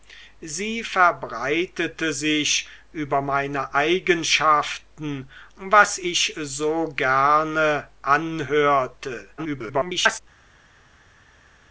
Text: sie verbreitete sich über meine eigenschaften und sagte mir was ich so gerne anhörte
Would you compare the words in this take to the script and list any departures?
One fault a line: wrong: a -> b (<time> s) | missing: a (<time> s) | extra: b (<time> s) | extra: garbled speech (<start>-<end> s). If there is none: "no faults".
missing: und sagte mir (5.3 s)
extra: garbled speech (9.4-10.2 s)